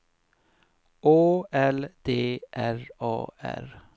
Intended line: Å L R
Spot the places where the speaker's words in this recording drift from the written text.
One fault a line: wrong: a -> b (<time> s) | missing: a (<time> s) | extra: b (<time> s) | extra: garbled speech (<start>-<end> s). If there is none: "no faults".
extra: D R A (2.0 s)